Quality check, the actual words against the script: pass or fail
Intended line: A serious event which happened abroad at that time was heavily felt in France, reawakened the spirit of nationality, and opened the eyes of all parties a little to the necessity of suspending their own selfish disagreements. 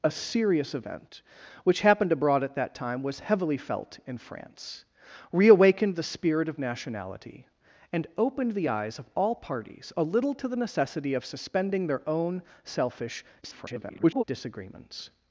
fail